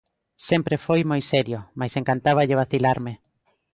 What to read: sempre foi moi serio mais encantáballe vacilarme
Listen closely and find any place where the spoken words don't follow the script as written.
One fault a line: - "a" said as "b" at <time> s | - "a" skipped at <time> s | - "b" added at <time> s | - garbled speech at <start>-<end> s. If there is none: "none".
none